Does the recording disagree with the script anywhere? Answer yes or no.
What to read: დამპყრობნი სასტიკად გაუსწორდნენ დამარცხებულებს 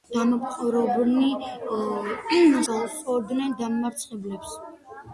yes